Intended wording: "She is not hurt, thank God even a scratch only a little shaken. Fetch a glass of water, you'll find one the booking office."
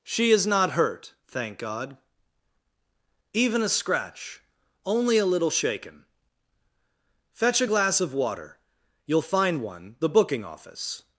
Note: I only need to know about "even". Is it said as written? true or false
true